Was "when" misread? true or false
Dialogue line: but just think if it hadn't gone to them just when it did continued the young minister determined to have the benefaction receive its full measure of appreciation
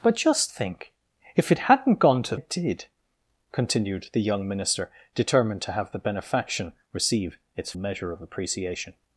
true